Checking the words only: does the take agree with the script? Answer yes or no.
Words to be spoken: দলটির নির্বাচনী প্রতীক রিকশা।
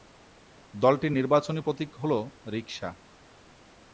no